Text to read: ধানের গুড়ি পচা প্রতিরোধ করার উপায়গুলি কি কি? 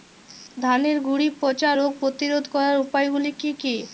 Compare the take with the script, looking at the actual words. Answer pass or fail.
fail